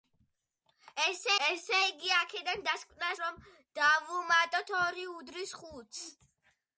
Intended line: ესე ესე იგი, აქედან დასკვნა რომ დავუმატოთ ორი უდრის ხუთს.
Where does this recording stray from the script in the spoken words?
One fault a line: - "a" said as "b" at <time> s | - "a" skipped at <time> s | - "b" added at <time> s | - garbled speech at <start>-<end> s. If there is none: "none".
none